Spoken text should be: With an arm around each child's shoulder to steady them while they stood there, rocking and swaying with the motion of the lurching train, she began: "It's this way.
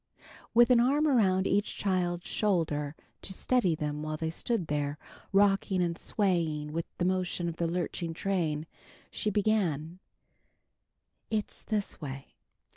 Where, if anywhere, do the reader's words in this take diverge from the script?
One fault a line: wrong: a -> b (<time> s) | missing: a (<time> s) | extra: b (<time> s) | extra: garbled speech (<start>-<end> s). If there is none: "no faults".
no faults